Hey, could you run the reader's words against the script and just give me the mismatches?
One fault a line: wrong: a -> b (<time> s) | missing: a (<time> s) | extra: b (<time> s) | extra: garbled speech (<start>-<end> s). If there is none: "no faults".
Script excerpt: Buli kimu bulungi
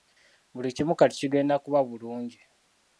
extra: kati kigenda kuba (1.0 s)